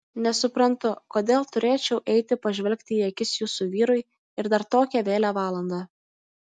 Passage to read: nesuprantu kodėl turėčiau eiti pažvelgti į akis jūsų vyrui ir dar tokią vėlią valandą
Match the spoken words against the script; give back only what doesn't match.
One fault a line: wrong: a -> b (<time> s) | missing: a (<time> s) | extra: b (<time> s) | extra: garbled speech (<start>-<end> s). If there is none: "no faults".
no faults